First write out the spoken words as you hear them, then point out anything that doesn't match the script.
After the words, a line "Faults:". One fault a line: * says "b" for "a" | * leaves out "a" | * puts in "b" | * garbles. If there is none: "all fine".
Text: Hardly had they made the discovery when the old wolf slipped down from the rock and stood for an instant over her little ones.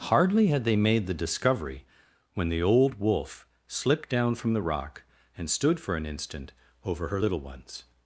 Hardly had they made the discovery when the old wolf slipped down from the rock and stood for an instant over her little ones.
Faults:
all fine